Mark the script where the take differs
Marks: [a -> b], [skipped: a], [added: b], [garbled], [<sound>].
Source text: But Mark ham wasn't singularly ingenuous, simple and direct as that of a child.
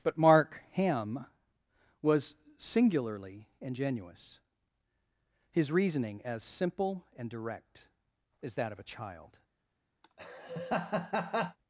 But Mark ham [wasn't -> was] singularly ingenuous, [added: his reasoning as] simple and direct as that of a child. [laugh]